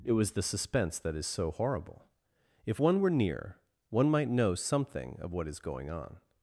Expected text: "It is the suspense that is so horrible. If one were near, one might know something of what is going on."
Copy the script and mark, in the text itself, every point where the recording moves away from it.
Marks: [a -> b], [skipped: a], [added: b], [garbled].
"It [is -> was] the suspense that is so horrible. If one were near, one might know something of what is going on."